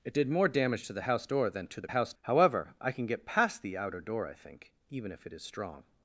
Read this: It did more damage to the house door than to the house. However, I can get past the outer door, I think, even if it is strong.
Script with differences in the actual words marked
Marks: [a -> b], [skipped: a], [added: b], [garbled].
It did more damage to the house door than to the house. However, I can get past the outer door, I think, even if it is strong.